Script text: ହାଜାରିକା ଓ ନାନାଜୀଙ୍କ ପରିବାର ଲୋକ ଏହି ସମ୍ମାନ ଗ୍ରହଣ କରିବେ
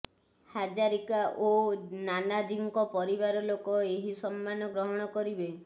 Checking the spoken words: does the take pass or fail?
pass